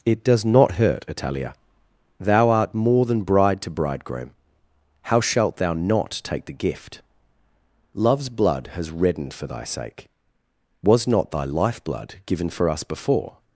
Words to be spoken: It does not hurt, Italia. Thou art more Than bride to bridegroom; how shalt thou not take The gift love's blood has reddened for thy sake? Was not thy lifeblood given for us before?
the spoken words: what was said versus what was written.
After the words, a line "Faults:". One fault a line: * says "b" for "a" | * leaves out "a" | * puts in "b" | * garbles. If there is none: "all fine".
It does not hurt, Italia. Thou art more Than bride to bridegroom; how shalt thou not take The gift love's blood has reddened for thy sake? Was not thy lifeblood given for us before?
Faults:
all fine